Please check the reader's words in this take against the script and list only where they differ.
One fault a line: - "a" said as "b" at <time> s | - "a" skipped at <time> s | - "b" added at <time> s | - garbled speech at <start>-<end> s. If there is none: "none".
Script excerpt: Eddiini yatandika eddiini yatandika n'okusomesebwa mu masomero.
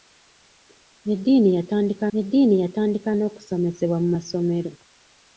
none